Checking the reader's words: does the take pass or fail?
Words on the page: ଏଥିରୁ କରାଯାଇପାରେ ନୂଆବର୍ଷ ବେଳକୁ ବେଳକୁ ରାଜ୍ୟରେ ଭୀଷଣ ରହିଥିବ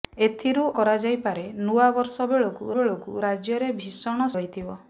pass